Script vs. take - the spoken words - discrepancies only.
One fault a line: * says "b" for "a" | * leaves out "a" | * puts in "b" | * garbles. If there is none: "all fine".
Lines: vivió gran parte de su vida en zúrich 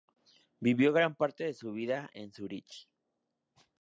all fine